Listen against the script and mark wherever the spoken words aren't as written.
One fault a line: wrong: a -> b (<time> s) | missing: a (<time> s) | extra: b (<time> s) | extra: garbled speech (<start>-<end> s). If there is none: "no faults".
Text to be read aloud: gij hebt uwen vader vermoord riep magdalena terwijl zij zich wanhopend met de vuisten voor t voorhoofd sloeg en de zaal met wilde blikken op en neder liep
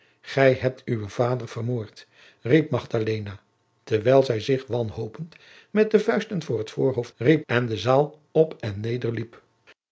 wrong: sloeg -> riep (7.2 s)
missing: met wilde blikken (8.2 s)